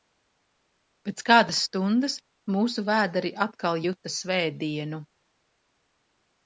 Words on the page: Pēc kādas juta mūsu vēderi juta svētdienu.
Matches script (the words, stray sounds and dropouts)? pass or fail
fail